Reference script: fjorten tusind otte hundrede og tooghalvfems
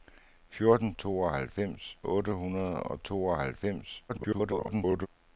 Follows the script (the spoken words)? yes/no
no